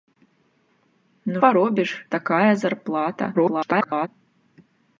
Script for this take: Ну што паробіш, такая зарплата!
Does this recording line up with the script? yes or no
no